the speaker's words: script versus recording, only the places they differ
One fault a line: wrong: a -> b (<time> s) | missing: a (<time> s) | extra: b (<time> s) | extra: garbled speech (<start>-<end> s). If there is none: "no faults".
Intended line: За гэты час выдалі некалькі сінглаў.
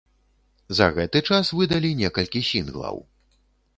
no faults